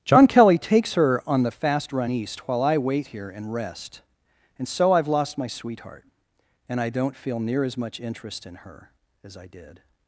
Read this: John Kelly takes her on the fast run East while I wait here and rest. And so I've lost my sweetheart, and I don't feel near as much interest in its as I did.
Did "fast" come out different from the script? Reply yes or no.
no